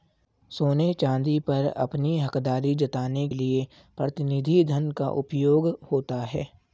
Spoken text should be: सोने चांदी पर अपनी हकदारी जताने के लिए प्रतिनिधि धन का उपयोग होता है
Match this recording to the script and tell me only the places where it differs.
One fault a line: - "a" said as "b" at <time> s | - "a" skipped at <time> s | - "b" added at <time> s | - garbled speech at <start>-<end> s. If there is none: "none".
- "के" skipped at 3.3 s